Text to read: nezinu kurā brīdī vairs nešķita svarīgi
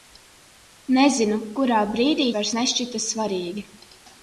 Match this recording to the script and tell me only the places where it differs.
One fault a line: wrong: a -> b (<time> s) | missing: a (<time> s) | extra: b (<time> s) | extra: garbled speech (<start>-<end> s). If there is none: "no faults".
no faults